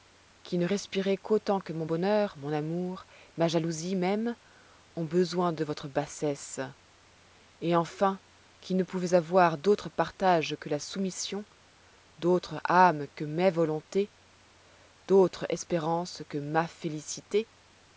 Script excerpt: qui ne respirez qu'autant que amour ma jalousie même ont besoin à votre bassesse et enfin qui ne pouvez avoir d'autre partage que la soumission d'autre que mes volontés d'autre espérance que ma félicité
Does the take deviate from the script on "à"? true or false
true